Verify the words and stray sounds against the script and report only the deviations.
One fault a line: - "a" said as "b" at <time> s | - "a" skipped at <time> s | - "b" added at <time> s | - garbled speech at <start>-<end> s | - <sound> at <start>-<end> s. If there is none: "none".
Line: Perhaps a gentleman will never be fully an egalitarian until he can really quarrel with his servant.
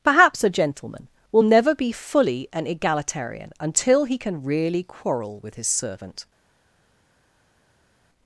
none